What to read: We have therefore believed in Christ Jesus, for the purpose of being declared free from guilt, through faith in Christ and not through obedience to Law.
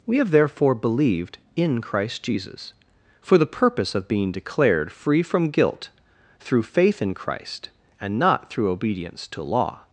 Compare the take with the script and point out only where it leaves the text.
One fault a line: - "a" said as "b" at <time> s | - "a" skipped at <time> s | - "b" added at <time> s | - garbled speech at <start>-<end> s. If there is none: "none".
none